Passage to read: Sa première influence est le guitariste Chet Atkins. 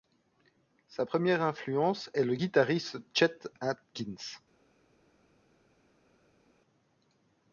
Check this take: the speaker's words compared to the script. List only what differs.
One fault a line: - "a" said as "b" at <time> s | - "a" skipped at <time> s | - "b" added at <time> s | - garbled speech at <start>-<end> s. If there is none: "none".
none